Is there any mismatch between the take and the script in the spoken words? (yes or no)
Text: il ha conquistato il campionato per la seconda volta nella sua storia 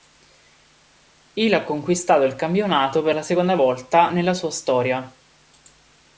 no